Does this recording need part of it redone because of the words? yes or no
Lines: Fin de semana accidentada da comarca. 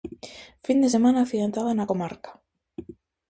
yes